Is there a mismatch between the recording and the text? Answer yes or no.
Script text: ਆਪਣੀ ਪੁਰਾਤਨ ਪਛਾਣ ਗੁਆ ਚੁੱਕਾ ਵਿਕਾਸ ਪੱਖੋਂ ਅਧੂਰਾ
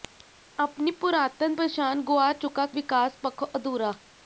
no